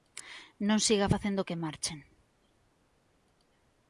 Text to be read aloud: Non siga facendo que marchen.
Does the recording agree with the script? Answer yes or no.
yes